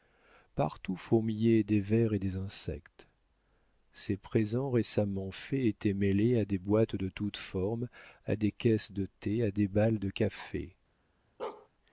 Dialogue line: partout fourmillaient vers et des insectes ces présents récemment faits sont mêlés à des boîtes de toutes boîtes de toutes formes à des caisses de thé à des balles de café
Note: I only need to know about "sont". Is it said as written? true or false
false